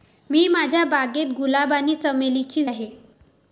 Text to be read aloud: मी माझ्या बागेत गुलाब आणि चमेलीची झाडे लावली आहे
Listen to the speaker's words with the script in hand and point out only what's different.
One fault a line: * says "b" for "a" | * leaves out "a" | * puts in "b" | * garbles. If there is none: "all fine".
* leaves out "झाडे लावली"